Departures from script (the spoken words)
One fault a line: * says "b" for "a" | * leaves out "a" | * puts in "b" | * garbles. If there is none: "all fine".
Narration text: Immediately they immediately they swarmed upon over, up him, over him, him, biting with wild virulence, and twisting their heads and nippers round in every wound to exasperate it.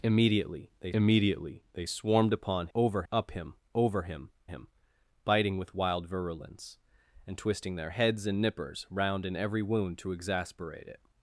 all fine